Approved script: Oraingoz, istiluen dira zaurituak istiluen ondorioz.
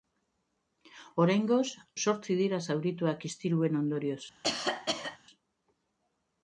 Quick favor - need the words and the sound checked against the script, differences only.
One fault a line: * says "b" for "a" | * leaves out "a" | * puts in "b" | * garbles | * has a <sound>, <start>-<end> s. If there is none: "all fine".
* says "zortzi" for "istiluen"
* has a cough, 4.4-5.2 s